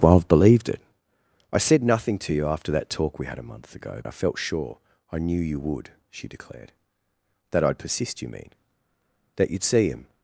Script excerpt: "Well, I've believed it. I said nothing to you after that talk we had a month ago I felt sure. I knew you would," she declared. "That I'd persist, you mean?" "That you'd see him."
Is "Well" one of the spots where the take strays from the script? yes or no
no